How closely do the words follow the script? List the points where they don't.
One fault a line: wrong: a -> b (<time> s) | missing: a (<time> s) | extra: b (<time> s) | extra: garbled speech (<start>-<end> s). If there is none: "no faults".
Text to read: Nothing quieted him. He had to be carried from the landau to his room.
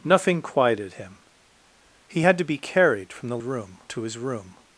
wrong: landau -> room (3.4 s)